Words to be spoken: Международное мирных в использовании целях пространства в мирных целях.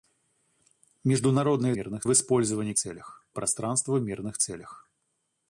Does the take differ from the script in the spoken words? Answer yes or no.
no